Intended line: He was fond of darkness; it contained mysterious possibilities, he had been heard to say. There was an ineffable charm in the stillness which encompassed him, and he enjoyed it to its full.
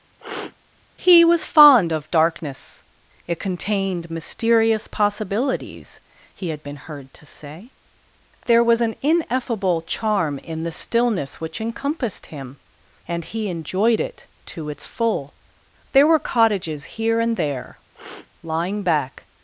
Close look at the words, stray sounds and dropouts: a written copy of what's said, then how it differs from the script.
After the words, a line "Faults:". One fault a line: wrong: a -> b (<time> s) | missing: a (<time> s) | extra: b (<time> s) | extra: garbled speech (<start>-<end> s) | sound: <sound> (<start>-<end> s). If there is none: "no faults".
He was fond of darkness; it contained mysterious possibilities, he had been heard to say. There was an ineffable charm in the stillness which encompassed him, and he enjoyed it to its full. There were cottages here and there, lying back
Faults:
sound: sniff (0.2-0.6 s)
extra: There were cottages here and there lying back (15.9 s)
sound: sniff (17.9-18.3 s)